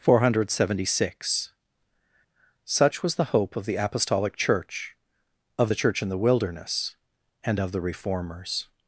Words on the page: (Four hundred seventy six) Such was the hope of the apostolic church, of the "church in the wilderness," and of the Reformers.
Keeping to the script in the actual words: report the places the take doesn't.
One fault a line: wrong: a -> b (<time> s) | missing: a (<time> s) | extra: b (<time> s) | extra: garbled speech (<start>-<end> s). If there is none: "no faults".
no faults